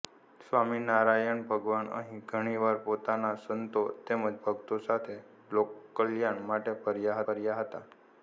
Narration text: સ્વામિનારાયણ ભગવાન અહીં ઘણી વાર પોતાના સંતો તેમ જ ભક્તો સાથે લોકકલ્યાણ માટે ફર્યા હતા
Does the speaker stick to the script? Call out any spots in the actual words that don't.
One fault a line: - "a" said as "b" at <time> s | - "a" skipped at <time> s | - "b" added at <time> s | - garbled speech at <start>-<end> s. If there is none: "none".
- "ફર્યા" added at 7.2 s